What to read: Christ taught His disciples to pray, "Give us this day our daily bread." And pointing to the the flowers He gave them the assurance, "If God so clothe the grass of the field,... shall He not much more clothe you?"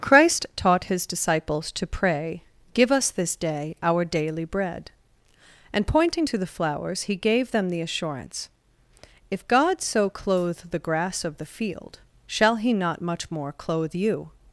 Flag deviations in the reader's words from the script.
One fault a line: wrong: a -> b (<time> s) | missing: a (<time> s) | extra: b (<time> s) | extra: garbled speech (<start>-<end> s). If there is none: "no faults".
missing: the (6.5 s)